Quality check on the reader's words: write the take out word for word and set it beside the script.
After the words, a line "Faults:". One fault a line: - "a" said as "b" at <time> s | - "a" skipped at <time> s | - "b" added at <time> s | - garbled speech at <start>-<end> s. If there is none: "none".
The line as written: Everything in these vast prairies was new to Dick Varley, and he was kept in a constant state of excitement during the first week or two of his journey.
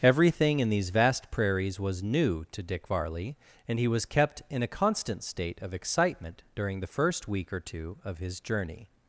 Everything in these vast prairies was new to Dick Varley, and he was kept in a constant state of excitement during the first week or two of his journey.
Faults:
none